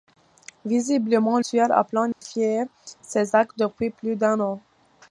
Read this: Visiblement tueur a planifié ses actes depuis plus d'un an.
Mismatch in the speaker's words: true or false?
false